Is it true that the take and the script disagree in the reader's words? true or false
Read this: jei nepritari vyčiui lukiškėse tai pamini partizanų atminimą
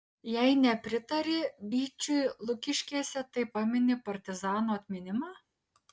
false